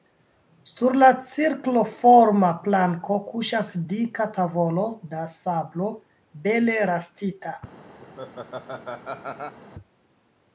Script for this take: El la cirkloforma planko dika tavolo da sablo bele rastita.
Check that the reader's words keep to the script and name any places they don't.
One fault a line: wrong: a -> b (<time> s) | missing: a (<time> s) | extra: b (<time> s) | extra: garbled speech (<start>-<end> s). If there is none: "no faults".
wrong: El -> Sur (0.7 s)
extra: kuŝas (3.3 s)